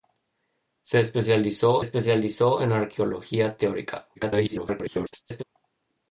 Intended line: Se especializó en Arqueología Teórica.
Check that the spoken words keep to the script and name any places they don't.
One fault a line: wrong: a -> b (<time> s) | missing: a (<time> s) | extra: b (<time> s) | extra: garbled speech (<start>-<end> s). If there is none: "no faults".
extra: especializó (1.8 s)
extra: garbled speech (4.1-5.4 s)